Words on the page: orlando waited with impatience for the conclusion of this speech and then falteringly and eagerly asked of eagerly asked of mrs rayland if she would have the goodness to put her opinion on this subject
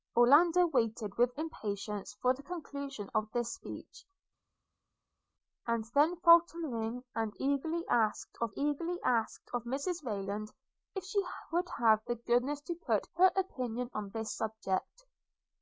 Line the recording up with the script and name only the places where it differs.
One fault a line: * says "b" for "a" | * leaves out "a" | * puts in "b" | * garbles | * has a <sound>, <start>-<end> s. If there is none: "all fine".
all fine